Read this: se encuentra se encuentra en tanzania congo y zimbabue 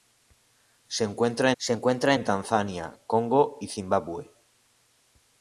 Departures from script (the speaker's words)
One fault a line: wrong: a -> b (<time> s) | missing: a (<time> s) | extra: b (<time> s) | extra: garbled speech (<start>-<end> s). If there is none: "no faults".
no faults